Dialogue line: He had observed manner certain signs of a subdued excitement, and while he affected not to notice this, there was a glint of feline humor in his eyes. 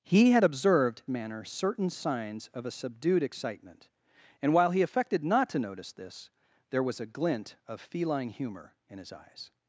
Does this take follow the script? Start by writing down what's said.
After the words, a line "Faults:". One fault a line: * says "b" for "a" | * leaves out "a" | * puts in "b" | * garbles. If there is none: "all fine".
He had observed manner certain signs of a subdued excitement, and while he affected not to notice this, there was a glint of feline humor in his eyes.
Faults:
all fine